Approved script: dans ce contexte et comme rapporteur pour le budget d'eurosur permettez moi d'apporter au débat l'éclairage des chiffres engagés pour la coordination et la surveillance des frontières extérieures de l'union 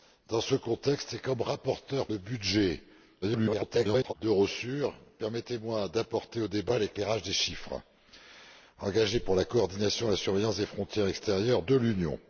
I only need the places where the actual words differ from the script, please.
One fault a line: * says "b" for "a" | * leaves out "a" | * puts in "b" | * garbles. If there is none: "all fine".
* leaves out "pour"
* garbles